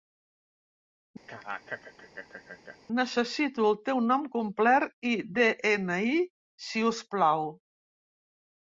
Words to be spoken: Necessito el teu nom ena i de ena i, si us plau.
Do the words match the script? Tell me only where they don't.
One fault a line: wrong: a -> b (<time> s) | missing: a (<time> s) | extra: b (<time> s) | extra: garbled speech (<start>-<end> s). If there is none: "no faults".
wrong: ena -> complet (4.4 s)